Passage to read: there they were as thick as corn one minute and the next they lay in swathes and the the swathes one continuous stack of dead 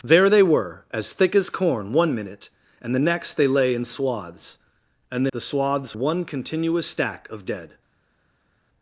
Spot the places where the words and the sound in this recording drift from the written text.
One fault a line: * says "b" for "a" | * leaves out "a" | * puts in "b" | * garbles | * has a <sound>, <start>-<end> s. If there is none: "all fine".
all fine